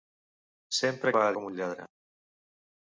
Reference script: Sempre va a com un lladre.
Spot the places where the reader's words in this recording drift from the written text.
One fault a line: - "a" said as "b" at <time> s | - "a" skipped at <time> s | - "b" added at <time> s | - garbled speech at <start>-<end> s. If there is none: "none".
none